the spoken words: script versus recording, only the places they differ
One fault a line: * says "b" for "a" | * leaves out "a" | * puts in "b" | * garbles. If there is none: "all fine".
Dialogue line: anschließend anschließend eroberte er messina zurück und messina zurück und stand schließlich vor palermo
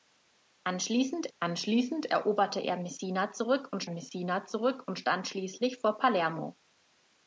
all fine